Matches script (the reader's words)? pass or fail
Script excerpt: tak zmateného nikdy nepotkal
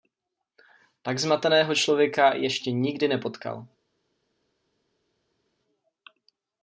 fail